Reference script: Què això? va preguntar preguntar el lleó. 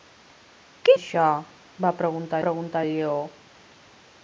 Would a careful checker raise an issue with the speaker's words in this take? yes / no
no